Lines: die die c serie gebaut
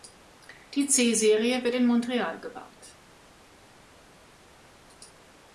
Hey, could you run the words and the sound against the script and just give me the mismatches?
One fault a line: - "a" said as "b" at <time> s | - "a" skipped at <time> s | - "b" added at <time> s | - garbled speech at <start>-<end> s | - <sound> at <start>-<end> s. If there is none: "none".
- "die" skipped at 0.9 s
- "wird in montreal" added at 1.6 s